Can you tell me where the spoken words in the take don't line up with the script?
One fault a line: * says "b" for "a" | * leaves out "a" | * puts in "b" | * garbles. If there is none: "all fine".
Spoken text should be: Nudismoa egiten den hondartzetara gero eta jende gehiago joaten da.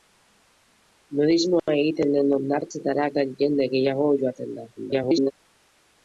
* leaves out "gero"
* garbles